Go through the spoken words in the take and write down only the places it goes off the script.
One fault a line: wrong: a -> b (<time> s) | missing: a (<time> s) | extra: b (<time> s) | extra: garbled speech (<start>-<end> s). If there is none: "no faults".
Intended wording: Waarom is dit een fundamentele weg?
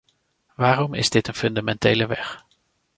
no faults